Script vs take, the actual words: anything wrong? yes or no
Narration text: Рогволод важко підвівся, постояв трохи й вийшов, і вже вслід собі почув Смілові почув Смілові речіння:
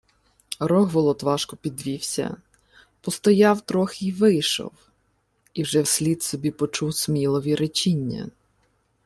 yes